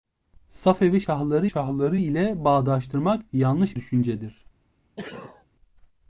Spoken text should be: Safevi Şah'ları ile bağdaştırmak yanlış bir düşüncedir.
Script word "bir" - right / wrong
wrong